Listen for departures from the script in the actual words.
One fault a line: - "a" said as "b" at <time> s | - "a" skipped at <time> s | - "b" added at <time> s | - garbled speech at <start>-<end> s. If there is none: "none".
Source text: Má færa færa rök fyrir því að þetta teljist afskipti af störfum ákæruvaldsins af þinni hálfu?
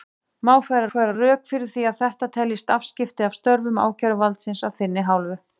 none